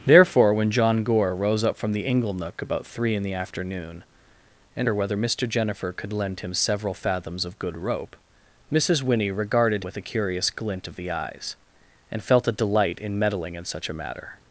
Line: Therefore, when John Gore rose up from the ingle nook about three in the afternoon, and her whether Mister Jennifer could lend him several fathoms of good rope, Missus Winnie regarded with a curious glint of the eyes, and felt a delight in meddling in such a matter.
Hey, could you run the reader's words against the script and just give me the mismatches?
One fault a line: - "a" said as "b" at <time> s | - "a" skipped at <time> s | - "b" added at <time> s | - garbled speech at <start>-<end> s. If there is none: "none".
none